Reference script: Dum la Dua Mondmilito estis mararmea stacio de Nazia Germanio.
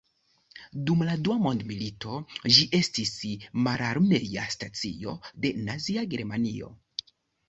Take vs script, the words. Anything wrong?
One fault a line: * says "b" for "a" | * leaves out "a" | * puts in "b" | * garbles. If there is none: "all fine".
* puts in "ĝi"